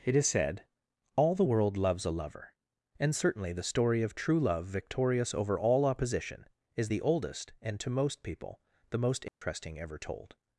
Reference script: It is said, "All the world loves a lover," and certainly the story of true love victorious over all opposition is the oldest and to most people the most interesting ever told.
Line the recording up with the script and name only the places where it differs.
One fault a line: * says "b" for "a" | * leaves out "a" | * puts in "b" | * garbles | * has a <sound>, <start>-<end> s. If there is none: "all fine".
* has a dropout, 9.3-9.4 s